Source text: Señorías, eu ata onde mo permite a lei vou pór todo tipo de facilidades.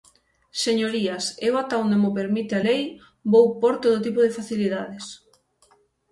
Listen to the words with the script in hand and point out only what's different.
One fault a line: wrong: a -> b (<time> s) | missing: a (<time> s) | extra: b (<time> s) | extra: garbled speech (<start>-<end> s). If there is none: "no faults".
no faults